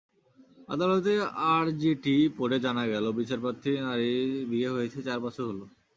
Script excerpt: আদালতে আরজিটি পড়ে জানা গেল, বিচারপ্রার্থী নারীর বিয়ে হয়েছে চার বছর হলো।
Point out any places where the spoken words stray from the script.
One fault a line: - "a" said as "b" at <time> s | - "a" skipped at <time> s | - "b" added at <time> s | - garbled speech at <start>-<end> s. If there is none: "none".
none